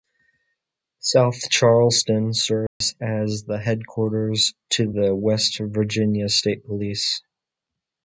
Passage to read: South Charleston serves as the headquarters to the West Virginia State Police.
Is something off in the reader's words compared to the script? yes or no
no